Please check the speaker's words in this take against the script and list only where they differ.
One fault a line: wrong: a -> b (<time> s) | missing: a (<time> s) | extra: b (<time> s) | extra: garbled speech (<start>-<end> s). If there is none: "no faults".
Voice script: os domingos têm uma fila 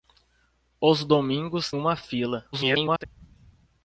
missing: têm (1.7 s)
extra: garbled speech (2.5-3.0 s)